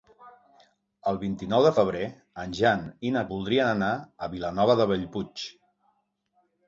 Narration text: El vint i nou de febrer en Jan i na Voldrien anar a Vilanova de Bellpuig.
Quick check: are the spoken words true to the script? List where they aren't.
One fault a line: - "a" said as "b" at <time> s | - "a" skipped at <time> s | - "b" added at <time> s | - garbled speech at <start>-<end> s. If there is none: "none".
none